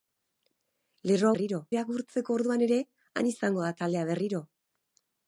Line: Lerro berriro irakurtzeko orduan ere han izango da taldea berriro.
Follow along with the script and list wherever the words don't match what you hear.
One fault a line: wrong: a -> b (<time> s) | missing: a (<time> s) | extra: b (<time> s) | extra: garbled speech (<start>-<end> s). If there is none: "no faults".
no faults